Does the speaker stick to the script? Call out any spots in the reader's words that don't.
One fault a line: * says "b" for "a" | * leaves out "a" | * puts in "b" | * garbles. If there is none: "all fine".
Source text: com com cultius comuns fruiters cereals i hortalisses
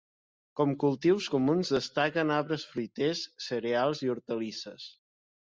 * leaves out "com"
* puts in "destaquen arbres"